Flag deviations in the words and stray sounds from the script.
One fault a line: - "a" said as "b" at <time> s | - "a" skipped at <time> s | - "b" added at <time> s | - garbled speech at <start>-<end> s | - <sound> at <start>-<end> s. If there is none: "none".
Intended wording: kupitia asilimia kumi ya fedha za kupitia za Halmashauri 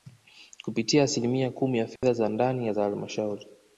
- dropout at 2.0-2.0 s
- "kupitia" said as "ndani" at 2.3 s